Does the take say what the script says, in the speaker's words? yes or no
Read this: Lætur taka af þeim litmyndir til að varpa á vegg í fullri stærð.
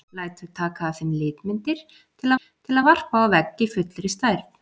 no